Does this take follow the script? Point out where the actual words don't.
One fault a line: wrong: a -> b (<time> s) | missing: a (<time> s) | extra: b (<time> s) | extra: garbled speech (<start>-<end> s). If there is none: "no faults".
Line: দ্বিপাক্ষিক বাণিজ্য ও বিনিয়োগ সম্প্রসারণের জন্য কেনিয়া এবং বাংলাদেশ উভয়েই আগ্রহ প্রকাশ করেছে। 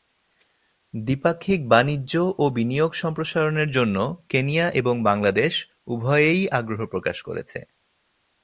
no faults